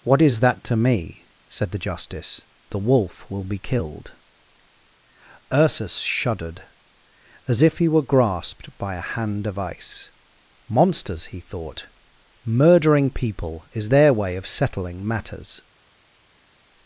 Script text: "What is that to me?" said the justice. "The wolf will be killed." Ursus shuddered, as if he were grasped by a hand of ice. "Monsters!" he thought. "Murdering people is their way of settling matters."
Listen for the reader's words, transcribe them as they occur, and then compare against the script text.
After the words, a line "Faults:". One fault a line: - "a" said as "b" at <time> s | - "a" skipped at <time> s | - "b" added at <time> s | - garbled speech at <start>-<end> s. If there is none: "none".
"What is that to me?" said the justice. "The wolf will be killed." Ursus shuddered, as if he were grasped by a hand of ice. "Monsters!" he thought. "Murdering people is their way of settling matters."
Faults:
none